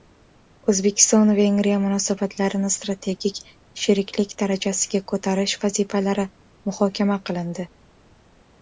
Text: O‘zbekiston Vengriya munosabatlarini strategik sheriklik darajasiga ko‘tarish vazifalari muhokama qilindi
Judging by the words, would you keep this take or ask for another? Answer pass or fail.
pass